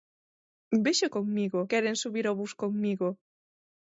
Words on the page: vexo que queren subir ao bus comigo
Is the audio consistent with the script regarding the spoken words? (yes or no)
no